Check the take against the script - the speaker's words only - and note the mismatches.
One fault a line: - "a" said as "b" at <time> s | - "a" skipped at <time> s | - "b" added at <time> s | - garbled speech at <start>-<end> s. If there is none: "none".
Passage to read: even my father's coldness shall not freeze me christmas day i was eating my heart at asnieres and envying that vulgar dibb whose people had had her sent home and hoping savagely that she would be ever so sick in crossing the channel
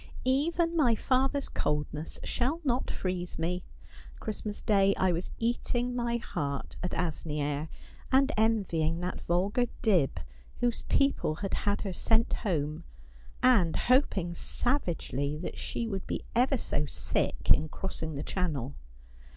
none